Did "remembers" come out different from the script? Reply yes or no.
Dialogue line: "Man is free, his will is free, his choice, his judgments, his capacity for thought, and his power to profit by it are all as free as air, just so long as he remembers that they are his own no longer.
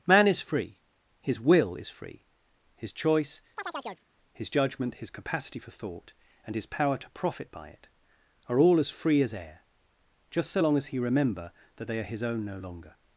yes